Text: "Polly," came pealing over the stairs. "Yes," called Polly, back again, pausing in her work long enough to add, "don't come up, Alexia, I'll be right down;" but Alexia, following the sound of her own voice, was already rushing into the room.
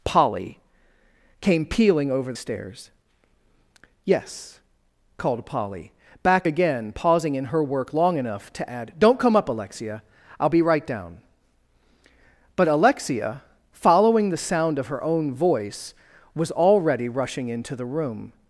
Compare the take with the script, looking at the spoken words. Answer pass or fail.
fail